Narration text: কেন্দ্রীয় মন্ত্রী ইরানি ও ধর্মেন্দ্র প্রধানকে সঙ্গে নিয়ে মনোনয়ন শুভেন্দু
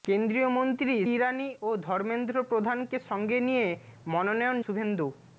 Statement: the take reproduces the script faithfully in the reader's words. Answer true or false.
true